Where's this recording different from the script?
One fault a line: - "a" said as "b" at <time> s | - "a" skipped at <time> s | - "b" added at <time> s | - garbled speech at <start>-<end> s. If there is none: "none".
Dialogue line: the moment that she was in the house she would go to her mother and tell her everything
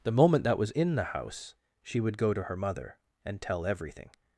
- "she" skipped at 0.6 s
- "her" skipped at 3.6 s